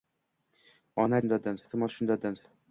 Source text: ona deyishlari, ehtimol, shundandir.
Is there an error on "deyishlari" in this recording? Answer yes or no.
yes